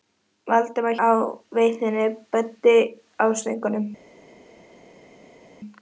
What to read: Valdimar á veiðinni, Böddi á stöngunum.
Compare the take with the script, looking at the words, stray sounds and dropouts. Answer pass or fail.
pass